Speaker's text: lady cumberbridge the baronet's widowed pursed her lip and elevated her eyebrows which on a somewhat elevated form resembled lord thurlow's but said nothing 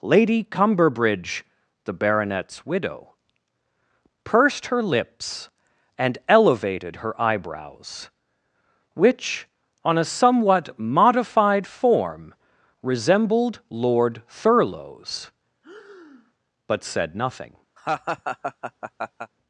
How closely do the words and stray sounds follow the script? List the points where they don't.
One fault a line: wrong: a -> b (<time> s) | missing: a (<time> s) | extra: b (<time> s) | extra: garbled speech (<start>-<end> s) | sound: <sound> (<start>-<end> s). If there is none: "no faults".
wrong: widowed -> widow (2.6 s)
wrong: lip -> lips (4.8 s)
wrong: elevated -> modified (10.8 s)
sound: breath (15.6-16.3 s)
sound: laugh (17.8-19.3 s)